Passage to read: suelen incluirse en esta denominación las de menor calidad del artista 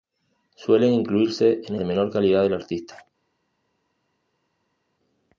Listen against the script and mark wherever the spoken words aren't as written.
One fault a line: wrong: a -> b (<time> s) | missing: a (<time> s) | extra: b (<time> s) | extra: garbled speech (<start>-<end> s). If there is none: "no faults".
missing: esta denominación las (1.7 s)